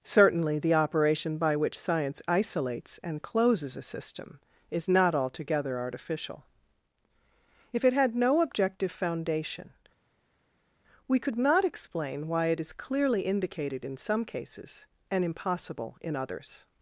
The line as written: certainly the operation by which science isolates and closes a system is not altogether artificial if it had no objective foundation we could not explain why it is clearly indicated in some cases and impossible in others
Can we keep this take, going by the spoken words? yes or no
yes